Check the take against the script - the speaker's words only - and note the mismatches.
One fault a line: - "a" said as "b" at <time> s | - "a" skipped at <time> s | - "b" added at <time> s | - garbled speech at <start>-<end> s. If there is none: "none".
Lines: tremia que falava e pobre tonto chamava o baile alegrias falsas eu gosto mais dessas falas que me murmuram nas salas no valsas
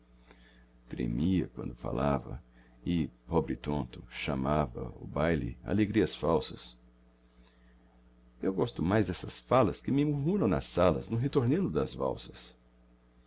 - "que" said as "quando" at 1.5 s
- "ritornelo das" added at 11.2 s